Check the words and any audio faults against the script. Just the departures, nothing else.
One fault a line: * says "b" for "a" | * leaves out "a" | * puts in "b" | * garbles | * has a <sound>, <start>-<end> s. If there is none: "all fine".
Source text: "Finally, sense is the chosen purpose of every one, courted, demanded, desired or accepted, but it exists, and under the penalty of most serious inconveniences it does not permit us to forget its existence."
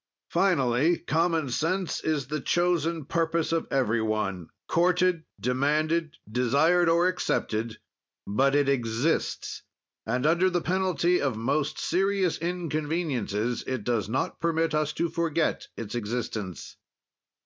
* puts in "common"